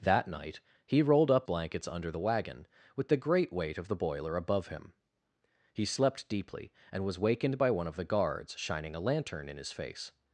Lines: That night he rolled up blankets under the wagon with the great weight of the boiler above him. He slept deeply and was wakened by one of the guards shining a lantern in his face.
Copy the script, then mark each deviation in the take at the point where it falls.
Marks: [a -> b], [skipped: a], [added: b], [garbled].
That night he rolled up blankets under the wagon with the great weight of the boiler above him. He slept deeply and was wakened by one of the guards shining a lantern in his face.